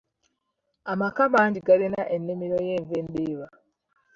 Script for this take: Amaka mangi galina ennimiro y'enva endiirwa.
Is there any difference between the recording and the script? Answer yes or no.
no